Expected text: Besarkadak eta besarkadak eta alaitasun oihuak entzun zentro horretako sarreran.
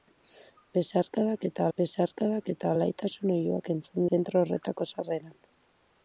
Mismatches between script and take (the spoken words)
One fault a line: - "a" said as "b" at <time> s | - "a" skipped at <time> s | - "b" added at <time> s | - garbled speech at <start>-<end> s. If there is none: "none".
none